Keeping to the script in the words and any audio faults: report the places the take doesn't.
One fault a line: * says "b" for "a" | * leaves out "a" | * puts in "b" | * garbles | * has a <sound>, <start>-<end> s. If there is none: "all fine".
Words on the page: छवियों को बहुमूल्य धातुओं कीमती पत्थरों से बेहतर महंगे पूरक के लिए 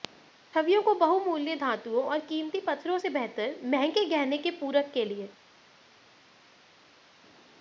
* puts in "और"
* puts in "गहने के"